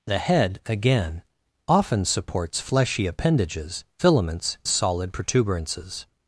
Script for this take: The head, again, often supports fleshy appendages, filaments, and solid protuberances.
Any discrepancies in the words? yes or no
yes